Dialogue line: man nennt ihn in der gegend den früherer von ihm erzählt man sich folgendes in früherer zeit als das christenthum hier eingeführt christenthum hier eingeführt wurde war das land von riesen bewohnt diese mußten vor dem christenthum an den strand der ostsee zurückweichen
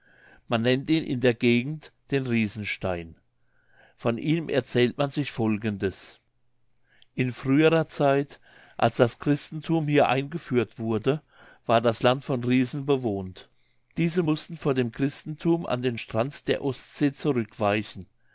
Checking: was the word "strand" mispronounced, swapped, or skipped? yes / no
no